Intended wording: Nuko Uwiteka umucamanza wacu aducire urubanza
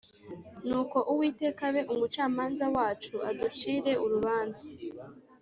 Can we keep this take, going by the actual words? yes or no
no